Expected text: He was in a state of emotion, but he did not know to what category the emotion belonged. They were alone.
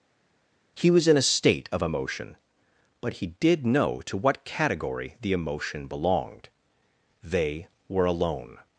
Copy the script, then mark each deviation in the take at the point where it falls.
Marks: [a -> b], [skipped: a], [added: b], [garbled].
He was in a state of emotion, but he did [skipped: not] know to what category the emotion belonged. They were alone.